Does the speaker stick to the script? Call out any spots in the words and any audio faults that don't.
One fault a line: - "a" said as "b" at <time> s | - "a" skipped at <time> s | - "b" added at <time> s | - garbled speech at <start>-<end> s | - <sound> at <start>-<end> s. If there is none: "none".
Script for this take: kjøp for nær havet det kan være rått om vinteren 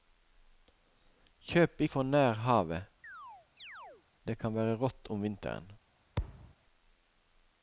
- chirp at 3.0-4.0 s
- thud at 6.2-6.5 s